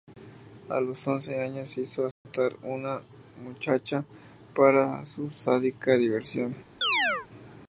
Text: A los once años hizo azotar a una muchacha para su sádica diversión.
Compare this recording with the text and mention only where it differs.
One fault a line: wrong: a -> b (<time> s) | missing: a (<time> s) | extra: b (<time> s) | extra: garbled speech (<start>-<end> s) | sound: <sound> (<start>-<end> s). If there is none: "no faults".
sound: dropout (2.1-2.3 s)
sound: chirp (6.8-7.3 s)